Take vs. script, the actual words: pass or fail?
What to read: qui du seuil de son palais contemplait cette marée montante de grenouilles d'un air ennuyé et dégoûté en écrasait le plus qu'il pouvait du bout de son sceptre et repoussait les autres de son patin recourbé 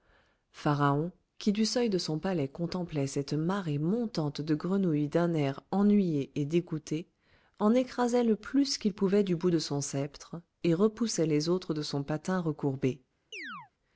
pass